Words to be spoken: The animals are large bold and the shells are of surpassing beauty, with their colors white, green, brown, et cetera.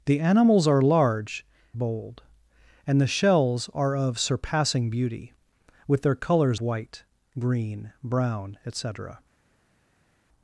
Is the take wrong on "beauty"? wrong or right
right